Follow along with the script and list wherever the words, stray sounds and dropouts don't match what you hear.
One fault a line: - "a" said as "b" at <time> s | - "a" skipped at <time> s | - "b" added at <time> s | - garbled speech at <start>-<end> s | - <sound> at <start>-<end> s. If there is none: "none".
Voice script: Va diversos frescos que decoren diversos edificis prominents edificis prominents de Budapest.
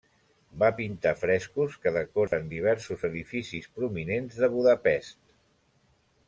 - "diversos" said as "pintar" at 0.8 s
- dropout at 2.3-2.3 s
- "edificis prominents" skipped at 4.4 s